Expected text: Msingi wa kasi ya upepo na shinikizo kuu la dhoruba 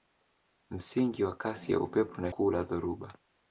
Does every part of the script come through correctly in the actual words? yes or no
no